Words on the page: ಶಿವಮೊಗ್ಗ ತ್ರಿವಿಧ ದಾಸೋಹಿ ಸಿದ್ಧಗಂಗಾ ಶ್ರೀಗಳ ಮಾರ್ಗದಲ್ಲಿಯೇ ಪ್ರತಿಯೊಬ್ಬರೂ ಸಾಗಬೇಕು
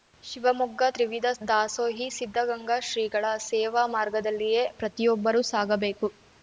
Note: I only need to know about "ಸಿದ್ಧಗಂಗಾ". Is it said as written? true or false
true